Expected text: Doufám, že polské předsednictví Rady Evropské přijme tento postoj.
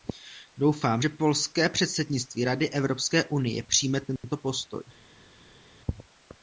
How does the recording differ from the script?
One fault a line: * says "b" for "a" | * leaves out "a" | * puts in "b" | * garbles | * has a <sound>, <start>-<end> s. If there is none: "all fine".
* puts in "unie"